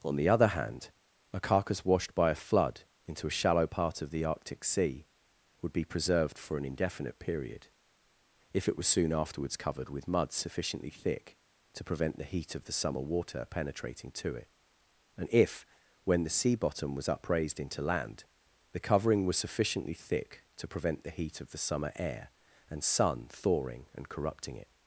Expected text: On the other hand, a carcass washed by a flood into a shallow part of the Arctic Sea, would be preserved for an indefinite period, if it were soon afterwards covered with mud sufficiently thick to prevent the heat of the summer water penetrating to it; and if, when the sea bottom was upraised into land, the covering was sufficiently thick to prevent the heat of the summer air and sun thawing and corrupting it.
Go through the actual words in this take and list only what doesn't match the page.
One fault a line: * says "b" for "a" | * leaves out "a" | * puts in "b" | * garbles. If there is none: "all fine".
* says "was" for "were"